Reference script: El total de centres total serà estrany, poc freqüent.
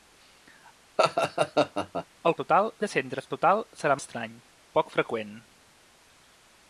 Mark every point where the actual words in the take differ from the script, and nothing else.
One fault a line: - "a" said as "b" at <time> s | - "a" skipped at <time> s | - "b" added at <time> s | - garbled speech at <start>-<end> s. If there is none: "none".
none